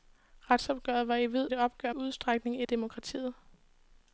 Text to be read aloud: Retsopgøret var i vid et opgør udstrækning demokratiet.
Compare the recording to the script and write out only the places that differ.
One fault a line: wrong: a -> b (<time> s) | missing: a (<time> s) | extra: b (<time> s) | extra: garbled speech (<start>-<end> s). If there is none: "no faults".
no faults